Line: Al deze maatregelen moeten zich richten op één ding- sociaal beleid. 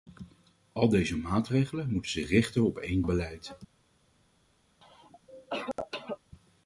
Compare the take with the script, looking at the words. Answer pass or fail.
fail